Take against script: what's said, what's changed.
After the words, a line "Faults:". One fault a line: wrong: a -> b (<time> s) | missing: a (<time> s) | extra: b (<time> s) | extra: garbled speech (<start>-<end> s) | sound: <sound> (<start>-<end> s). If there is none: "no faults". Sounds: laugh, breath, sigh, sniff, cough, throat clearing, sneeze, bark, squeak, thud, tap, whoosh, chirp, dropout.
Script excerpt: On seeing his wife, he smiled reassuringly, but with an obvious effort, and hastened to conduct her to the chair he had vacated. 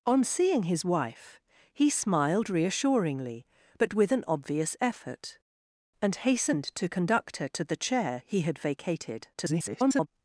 On seeing his wife, he smiled reassuringly, but with an obvious effort, and hastened to conduct her to the chair he had vacated. [garbled]
Faults:
extra: garbled speech (9.3-10.1 s)